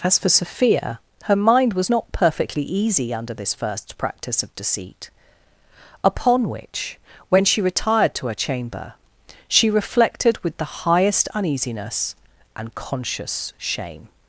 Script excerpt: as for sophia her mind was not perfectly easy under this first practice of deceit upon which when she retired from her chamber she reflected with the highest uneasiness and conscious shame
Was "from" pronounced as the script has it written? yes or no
no